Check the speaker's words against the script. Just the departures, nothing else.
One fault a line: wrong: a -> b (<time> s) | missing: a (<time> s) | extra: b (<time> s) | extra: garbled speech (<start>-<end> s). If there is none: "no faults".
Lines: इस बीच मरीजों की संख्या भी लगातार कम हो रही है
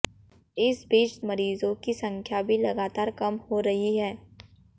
no faults